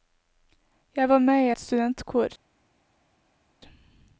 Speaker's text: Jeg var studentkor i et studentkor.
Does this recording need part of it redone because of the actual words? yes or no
yes